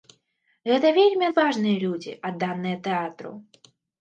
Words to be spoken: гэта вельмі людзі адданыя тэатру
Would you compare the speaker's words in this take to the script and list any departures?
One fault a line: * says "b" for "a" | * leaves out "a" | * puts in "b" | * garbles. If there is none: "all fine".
* puts in "адважныя"